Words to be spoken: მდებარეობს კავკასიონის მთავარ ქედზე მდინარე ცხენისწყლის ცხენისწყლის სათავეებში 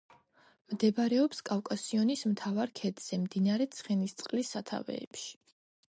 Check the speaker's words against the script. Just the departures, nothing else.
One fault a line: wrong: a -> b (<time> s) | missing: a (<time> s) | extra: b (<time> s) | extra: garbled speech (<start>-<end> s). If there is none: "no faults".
missing: ცხენისწყლის (4.6 s)